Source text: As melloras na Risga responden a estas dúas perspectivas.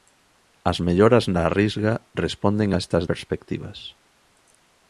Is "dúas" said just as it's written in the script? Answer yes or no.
no